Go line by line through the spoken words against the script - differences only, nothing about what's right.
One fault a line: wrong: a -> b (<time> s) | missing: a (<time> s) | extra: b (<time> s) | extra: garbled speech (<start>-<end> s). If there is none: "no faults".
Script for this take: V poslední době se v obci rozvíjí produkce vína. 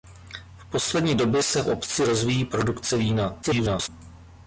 extra: garbled speech (3.4-3.9 s)